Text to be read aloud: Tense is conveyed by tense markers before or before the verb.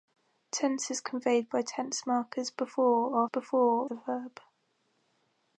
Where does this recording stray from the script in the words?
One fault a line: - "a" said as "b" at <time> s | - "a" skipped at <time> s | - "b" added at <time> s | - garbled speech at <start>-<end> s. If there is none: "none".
none